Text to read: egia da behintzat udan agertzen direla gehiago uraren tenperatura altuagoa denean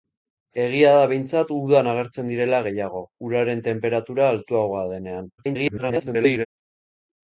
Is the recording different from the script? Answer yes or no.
yes